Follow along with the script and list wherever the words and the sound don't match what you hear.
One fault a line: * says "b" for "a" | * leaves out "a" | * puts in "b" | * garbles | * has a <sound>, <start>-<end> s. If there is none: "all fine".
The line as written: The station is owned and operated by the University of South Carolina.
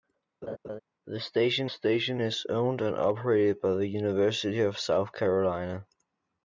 * has a laugh, 0.4-0.8 s
* puts in "station"